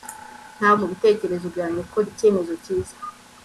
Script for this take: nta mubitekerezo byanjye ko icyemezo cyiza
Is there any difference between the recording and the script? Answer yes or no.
no